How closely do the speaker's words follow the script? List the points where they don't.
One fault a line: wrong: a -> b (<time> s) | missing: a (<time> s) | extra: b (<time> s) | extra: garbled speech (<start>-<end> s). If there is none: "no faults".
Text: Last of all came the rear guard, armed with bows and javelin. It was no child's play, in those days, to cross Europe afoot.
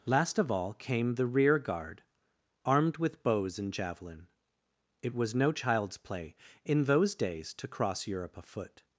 no faults